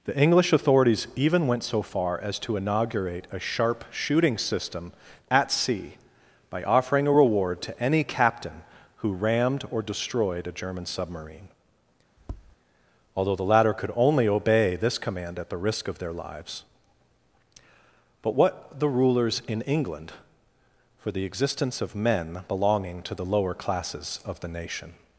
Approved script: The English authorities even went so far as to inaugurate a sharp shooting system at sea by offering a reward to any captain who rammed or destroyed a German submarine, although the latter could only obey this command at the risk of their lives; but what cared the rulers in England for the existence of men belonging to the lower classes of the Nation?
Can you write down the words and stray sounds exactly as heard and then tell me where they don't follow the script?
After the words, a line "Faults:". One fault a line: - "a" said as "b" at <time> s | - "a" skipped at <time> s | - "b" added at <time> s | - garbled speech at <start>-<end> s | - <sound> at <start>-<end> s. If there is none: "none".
The English authorities even went so far as to inaugurate a sharp shooting system at sea by offering a reward to any captain who rammed or destroyed a German submarine, although the latter could only obey this command at the risk of their lives; but what the rulers in England for the existence of men belonging to the lower classes of the Nation?
Faults:
- tap at 12.2-12.6 s
- "cared" skipped at 18.8 s